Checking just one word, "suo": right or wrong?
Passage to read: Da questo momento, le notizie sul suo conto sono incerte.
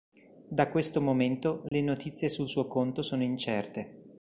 right